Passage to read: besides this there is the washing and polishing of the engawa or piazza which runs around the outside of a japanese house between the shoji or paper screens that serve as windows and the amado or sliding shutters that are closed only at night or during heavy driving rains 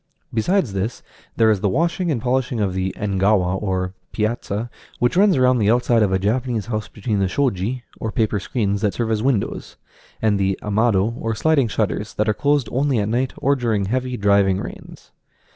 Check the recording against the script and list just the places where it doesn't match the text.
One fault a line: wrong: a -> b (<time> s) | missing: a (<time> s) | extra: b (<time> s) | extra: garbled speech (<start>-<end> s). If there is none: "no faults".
no faults